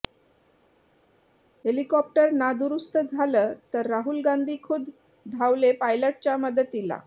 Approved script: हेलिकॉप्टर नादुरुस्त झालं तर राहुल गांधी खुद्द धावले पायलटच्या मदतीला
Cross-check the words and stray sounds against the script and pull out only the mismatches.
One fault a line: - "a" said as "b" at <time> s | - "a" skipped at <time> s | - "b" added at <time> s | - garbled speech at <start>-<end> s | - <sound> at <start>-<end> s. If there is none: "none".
none